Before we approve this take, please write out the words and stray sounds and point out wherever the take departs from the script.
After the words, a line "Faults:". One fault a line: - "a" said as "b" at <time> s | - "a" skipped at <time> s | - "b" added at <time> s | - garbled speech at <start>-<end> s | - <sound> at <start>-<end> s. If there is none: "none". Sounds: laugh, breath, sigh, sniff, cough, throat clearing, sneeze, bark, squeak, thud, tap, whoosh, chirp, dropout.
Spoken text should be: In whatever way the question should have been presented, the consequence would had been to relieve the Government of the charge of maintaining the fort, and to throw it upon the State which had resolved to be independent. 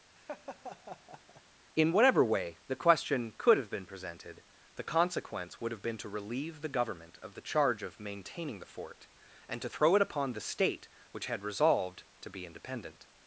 In whatever way the question could have been presented, the consequence would have been to relieve the Government of the charge of maintaining the fort, and to throw it upon the State which had resolved to be independent.
Faults:
- laugh at 0.2-1.4 s
- "should" said as "could" at 3.4 s
- "had" said as "have" at 5.7 s